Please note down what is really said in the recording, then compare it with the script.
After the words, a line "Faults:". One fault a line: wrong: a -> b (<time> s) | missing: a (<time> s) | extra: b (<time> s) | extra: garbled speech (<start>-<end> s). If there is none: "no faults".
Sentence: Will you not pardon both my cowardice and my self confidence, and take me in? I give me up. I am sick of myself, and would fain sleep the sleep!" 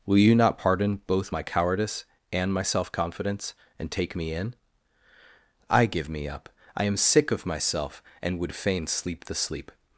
Will you not pardon both my cowardice and my self confidence, and take me in? I give me up. I am sick of myself, and would fain sleep the sleep!"
Faults:
no faults